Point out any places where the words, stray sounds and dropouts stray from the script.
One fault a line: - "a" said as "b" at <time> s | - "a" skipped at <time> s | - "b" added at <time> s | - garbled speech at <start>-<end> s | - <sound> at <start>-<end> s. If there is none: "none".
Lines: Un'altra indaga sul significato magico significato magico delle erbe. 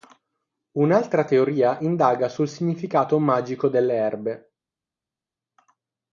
- "teoria" added at 1.2 s
- "significato magico" skipped at 3.7 s